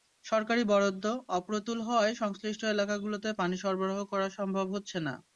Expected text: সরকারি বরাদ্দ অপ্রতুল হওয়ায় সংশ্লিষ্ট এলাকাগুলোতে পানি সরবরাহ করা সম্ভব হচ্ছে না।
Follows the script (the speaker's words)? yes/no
yes